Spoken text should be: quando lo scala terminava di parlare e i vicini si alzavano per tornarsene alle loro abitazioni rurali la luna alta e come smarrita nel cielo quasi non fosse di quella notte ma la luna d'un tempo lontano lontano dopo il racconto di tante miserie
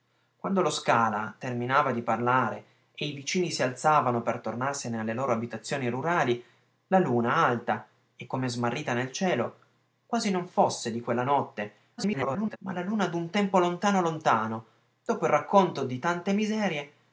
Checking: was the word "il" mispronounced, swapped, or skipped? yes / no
no